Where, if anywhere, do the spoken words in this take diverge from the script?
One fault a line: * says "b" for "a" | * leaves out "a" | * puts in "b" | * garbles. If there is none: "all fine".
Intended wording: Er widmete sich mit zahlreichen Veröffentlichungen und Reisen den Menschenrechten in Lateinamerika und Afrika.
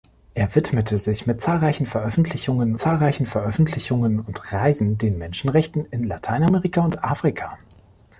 * puts in "zahlreichen Veröffentlichungen"